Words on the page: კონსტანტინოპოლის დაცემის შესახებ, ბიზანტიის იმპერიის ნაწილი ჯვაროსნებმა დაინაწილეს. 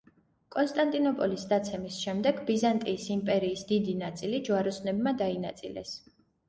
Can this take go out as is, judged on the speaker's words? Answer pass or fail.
fail